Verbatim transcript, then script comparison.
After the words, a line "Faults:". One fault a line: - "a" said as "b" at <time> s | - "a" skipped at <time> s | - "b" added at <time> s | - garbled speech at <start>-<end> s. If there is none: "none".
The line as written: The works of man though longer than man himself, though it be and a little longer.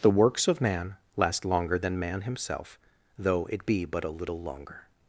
The works of man last longer than man himself, though it be but a little longer.
Faults:
- "though" said as "last" at 1.1 s
- "and" said as "but" at 3.8 s